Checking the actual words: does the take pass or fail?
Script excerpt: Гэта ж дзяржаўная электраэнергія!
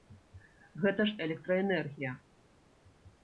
fail